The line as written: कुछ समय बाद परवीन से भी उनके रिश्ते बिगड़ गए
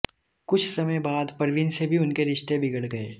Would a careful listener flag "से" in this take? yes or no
no